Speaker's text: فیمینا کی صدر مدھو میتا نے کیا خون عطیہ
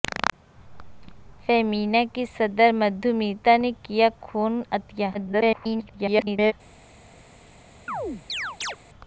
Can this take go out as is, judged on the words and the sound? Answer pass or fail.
fail